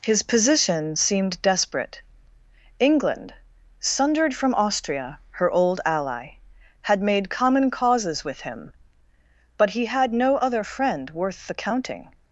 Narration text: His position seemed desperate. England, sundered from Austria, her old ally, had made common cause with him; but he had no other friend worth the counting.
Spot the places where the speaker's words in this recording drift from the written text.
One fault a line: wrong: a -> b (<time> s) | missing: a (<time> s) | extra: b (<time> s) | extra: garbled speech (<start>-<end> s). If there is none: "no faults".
wrong: cause -> causes (7.7 s)